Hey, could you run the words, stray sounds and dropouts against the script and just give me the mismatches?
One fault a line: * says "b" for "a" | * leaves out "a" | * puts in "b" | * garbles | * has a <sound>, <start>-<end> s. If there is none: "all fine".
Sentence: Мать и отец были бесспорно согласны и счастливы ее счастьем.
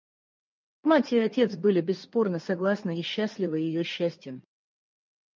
all fine